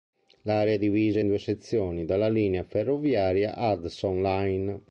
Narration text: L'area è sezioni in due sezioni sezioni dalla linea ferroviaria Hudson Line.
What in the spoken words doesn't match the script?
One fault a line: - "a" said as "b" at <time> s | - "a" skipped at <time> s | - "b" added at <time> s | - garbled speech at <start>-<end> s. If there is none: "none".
- "sezioni" said as "divisa" at 0.8 s
- "sezioni" skipped at 2.0 s